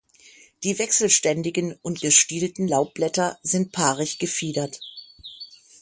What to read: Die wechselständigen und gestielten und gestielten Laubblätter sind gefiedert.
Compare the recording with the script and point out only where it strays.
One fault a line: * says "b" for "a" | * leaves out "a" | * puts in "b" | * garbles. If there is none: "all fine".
* leaves out "und gestielten"
* puts in "paarig"